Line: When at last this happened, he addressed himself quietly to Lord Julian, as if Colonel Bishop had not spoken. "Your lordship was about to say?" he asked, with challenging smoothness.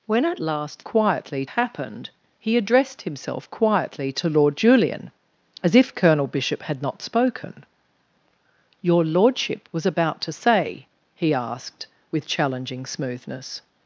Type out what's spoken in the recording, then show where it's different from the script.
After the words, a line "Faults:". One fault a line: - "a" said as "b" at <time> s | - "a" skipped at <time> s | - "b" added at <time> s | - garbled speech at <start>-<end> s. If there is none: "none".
When at last quietly happened, he addressed himself quietly to Lord Julian, as if Colonel Bishop had not spoken. "Your lordship was about to say?" he asked, with challenging smoothness.
Faults:
- "this" said as "quietly" at 0.8 s